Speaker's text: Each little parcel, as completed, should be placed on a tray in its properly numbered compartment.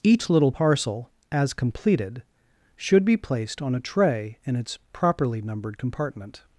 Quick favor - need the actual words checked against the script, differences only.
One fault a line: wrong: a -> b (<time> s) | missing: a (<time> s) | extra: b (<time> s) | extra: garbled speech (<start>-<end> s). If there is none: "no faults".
no faults